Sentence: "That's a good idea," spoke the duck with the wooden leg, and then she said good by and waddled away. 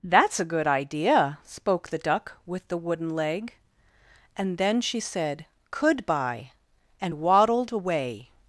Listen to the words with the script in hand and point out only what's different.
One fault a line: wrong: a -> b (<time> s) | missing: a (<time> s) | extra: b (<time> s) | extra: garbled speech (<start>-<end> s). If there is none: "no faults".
wrong: good -> could (5.7 s)